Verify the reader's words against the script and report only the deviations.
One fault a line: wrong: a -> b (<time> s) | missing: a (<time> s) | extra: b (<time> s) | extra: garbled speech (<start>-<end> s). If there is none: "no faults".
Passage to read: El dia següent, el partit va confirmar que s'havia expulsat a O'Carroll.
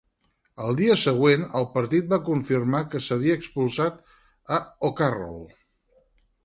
no faults